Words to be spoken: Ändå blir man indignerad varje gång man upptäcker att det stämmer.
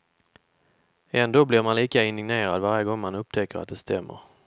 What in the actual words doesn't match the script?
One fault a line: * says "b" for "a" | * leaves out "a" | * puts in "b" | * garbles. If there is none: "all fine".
* puts in "lika"